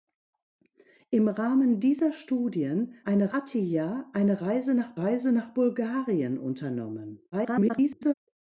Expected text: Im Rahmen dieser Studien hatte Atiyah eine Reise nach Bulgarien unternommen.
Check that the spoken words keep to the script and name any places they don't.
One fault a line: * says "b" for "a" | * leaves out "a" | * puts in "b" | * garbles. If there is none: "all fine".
* says "eine" for "hatte"
* puts in "Reise nach"
* garbles